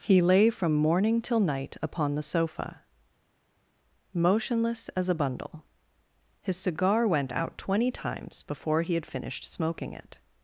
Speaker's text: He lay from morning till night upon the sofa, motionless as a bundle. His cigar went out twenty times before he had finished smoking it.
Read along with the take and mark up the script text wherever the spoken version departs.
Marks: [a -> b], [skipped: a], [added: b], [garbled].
He lay from morning till night upon the sofa, motionless as a bundle. His cigar went out twenty times before he had finished smoking it.